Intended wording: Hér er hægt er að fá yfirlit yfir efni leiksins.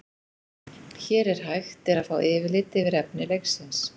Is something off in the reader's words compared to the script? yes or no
no